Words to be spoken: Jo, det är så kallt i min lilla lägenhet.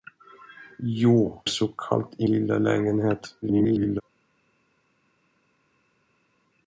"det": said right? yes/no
no